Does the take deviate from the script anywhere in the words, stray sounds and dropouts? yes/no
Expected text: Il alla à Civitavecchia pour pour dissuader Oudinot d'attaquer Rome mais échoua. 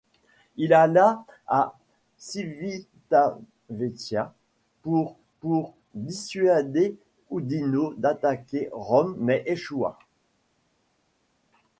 no